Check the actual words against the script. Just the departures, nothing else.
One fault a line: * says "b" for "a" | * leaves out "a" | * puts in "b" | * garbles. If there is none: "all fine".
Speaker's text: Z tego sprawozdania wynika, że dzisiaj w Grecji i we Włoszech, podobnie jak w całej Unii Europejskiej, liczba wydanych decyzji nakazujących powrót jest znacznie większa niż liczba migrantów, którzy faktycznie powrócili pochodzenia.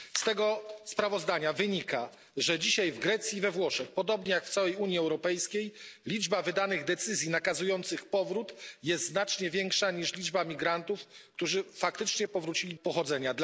all fine